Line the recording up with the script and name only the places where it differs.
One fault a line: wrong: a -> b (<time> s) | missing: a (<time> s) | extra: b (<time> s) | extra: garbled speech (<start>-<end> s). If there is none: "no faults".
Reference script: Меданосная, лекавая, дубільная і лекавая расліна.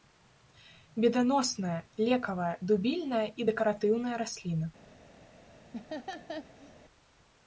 wrong: лекавая -> дэкаратыўная (3.5 s)